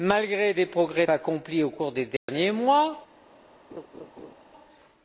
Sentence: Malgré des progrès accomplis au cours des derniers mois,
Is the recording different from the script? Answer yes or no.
no